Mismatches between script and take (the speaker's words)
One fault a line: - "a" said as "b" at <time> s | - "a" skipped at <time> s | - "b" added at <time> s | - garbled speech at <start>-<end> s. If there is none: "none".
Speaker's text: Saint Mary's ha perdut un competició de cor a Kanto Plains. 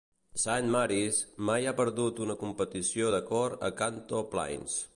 - "mai" added at 1.5 s
- "un" said as "una" at 2.3 s